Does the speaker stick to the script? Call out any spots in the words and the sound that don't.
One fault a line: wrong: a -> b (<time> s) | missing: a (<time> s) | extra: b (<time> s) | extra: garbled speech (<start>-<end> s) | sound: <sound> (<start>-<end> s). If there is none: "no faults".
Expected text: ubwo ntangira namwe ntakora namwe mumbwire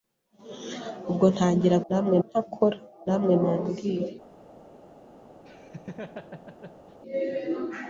sound: laugh (5.4-7.0 s)